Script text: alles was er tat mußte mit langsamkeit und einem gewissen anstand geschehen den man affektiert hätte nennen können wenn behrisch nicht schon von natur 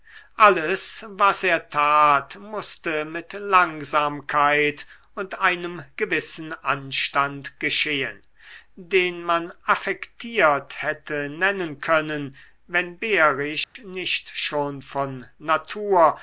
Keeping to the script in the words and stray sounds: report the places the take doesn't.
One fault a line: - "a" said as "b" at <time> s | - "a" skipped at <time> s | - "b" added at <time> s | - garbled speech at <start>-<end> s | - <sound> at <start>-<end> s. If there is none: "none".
- dropout at 13.6-13.8 s